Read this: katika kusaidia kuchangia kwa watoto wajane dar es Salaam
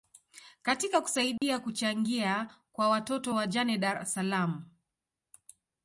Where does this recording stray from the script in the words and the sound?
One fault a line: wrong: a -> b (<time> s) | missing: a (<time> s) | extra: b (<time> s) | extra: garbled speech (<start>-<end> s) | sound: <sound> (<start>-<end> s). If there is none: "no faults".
sound: dropout (1.4-1.4 s)